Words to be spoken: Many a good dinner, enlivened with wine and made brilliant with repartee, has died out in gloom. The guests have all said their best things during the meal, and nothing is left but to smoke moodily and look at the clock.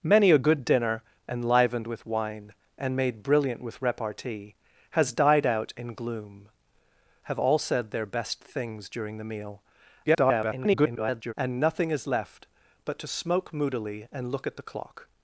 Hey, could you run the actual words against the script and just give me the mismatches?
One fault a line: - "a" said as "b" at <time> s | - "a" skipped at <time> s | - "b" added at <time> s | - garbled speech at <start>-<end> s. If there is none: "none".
- "The guests" skipped at 6.5 s
- garbled speech at 10.1-11.3 s